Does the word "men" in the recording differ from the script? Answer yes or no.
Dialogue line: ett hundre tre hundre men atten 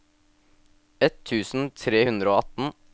yes